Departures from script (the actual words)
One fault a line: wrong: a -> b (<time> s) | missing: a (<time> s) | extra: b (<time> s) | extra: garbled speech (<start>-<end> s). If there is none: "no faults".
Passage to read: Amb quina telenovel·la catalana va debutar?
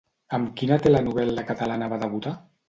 no faults